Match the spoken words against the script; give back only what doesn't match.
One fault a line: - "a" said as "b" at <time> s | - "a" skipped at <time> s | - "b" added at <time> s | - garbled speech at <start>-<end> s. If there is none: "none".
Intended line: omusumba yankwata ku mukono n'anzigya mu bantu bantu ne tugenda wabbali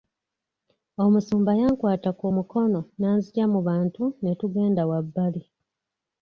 - "bantu" skipped at 4.0 s